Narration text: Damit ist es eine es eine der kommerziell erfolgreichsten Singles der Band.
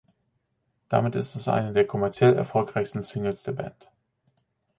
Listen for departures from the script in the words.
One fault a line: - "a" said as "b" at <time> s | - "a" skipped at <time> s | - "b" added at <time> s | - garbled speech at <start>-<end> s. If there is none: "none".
- "es eine" skipped at 1.7 s